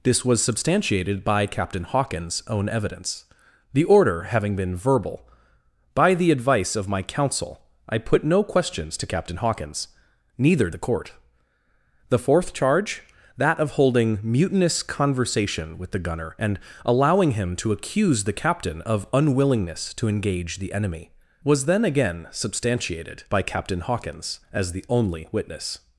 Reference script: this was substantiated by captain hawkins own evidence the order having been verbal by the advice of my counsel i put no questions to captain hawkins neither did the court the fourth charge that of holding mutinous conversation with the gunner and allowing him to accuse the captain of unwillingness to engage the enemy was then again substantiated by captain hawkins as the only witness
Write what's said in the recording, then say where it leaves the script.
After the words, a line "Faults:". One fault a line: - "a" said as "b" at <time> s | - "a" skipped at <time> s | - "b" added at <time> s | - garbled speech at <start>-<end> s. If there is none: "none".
this was substantiated by captain hawkins own evidence the order having been verbal by the advice of my counsel i put no questions to captain hawkins neither the court the fourth charge that of holding mutinous conversation with the gunner and allowing him to accuse the captain of unwillingness to engage the enemy was then again substantiated by captain hawkins as the only witness
Faults:
- "did" skipped at 10.7 s